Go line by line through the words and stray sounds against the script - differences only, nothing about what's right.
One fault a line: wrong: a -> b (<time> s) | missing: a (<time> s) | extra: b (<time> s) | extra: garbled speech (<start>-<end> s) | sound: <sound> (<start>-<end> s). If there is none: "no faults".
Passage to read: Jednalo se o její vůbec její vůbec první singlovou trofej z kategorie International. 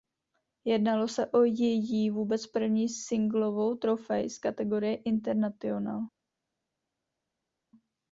missing: její vůbec (2.5 s)